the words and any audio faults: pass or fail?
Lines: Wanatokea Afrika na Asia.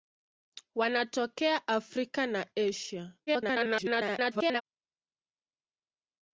fail